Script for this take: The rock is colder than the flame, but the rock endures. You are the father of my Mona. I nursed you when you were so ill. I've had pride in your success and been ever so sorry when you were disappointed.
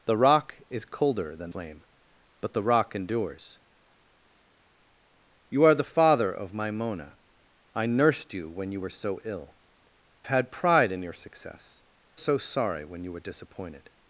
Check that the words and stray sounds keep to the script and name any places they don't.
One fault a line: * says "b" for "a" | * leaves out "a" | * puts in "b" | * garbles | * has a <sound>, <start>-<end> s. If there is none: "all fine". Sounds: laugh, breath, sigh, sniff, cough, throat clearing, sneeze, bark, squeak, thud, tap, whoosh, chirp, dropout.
* leaves out "the"
* leaves out "I've"
* leaves out "and been ever"